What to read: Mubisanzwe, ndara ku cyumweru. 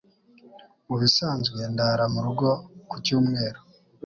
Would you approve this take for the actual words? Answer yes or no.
no